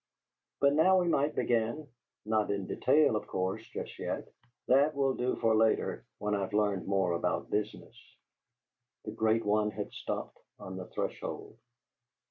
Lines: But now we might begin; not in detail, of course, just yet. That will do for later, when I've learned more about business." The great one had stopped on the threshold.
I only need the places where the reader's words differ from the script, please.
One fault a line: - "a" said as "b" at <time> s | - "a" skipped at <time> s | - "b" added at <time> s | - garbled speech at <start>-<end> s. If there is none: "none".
none